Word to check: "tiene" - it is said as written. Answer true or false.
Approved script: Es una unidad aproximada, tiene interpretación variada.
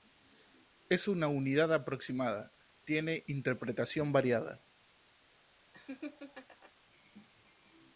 true